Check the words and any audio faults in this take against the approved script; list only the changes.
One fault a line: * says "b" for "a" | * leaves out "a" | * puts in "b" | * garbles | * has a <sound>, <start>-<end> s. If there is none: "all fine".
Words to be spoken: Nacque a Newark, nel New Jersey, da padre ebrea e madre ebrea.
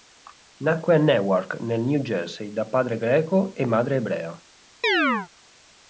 * says "greco" for "ebrea"
* has a chirp, 4.8-5.3 s